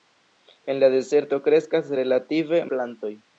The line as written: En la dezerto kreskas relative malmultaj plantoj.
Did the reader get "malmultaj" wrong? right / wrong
wrong